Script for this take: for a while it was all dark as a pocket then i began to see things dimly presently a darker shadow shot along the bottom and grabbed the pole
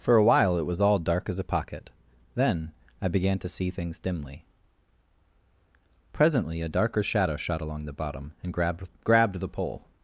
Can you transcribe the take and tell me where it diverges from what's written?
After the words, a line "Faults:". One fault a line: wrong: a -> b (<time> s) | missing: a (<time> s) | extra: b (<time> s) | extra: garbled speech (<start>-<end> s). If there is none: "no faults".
for a while it was all dark as a pocket then i began to see things dimly presently a darker shadow shot along the bottom and grabbed grabbed the pole
Faults:
extra: grabbed (9.0 s)